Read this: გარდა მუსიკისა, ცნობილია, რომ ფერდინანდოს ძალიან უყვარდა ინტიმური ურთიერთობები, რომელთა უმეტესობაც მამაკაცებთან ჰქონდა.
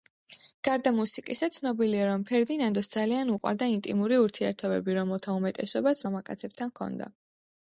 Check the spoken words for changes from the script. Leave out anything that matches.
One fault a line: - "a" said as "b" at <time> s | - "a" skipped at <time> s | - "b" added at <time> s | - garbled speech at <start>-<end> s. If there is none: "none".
none